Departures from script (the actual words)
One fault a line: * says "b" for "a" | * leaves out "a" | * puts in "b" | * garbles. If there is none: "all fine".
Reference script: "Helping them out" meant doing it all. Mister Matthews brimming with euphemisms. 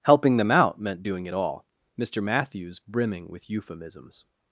all fine